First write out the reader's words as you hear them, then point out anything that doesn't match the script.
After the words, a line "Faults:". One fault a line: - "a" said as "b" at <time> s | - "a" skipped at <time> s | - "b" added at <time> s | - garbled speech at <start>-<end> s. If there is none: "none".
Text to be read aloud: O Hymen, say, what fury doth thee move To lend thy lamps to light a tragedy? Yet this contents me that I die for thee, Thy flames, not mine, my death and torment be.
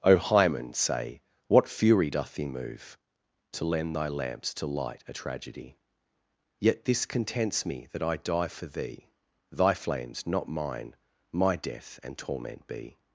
O Hymen, say, what fury doth thee move To lend thy lamps to light a tragedy? Yet this contents me that I die for thee, Thy flames, not mine, my death and torment be.
Faults:
none